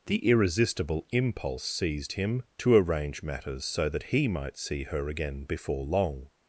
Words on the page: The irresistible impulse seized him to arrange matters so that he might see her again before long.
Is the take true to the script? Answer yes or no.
yes